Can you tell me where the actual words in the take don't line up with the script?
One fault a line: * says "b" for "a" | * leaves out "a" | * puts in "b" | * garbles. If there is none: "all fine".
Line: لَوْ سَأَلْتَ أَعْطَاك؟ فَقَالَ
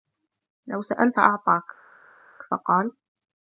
all fine